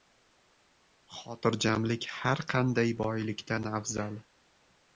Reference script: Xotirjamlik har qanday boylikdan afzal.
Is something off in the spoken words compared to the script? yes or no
no